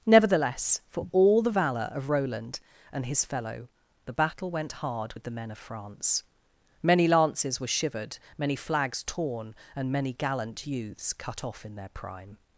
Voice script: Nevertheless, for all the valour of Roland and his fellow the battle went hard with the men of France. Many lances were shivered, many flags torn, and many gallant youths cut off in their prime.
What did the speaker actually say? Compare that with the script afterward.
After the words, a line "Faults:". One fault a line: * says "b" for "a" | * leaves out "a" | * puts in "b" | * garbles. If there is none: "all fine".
Nevertheless, for all the valour of Roland and his fellow the battle went hard with the men of France. Many lances were shivered, many flags torn, and many gallant youths cut off in their prime.
Faults:
all fine